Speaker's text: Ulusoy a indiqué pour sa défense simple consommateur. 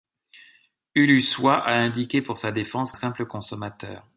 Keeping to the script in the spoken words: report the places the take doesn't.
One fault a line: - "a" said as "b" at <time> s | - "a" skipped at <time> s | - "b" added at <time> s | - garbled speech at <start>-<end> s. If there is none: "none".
none